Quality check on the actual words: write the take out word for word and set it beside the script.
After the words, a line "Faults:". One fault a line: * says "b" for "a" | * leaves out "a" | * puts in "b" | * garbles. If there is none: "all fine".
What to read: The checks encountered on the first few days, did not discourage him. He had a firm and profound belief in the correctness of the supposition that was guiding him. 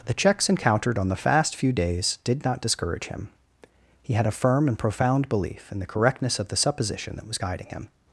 The checks encountered on the fast few days, did not discourage him. He had a firm and profound belief in the correctness of the supposition that was guiding him.
Faults:
* says "fast" for "first"